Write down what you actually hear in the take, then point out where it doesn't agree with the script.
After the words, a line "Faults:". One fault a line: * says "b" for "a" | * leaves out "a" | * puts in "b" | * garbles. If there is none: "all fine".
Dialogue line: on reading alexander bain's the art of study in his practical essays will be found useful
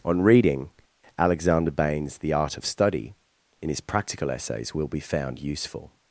on reading alexander bain's the art of study in his practical essays will be found useful
Faults:
all fine